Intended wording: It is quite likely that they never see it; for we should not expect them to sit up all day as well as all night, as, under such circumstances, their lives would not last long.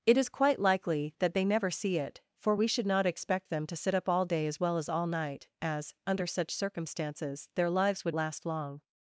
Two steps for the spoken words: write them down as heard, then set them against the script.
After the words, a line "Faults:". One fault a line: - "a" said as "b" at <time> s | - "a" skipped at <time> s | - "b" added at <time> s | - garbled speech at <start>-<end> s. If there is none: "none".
It is quite likely that they never see it; for we should not expect them to sit up all day as well as all night, as, under such circumstances, their lives would last long.
Faults:
- "not" skipped at 8.2 s